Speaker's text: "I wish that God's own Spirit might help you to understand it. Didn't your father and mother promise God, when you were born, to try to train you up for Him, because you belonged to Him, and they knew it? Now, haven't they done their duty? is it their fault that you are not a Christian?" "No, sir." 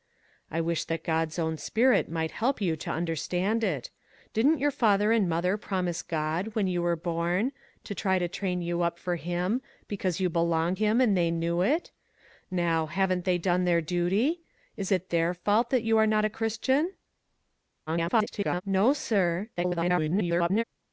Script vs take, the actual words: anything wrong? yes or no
yes